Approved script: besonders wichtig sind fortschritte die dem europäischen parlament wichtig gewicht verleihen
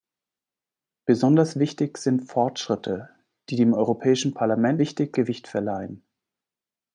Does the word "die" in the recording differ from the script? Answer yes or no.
no